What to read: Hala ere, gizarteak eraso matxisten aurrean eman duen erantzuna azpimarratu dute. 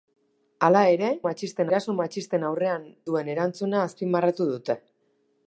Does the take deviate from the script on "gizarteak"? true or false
true